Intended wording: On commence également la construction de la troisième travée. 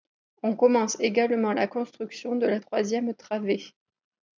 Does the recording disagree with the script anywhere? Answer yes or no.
no